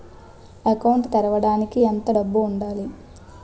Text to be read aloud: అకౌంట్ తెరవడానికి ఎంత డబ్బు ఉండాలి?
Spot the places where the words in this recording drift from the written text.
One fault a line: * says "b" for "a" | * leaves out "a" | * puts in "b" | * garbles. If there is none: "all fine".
all fine